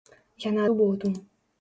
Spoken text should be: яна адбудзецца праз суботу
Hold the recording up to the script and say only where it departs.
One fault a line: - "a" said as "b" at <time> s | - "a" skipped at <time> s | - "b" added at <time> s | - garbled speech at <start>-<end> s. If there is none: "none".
- "адбудзецца праз" skipped at 0.6 s